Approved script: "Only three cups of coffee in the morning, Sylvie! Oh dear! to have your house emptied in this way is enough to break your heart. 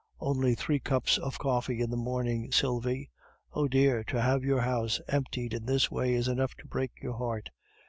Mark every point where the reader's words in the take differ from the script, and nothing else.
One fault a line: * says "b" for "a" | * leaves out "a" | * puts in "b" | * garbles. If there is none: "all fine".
all fine